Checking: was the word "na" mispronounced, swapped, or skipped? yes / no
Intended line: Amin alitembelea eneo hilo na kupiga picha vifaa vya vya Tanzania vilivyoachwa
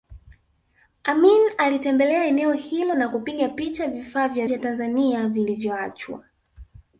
no